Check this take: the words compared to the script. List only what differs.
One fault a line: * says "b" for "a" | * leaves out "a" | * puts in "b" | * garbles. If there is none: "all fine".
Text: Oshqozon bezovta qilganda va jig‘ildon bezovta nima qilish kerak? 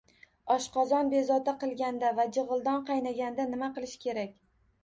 * says "qaynaganda" for "bezovta"